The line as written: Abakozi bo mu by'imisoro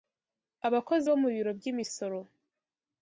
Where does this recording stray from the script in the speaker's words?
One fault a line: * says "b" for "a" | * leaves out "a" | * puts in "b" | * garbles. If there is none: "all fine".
* puts in "biro"